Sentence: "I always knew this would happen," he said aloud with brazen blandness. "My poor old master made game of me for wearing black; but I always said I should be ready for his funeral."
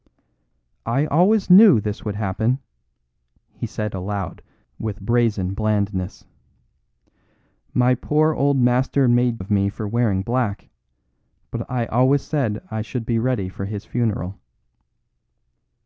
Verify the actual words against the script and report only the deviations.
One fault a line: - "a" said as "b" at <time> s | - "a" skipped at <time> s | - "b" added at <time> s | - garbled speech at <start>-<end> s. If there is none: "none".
- "game" skipped at 9.4 s